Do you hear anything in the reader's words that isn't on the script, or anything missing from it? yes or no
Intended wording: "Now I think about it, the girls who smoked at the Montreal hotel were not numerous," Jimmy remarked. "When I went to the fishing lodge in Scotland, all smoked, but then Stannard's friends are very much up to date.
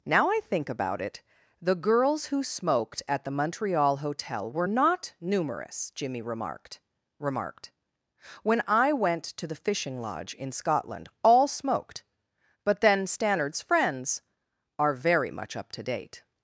yes